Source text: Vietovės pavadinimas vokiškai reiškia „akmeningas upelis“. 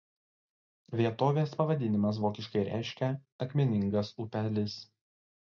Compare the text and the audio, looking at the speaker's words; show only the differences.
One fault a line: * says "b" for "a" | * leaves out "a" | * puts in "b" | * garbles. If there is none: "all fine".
all fine